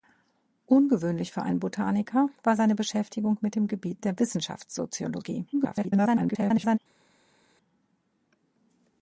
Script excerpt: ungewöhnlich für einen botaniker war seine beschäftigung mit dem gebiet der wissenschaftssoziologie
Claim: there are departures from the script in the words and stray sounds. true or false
true